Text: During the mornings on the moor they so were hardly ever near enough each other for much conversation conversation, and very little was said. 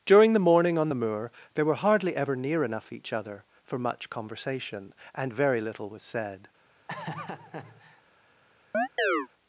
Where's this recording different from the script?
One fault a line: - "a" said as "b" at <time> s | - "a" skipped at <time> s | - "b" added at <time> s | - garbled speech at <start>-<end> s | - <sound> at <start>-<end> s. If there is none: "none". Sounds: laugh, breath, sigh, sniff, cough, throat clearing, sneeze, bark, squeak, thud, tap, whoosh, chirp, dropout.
- "mornings" said as "morning" at 0.4 s
- "so" skipped at 1.6 s
- "conversation" skipped at 4.9 s
- laugh at 6.9-8.0 s
- chirp at 8.7-9.3 s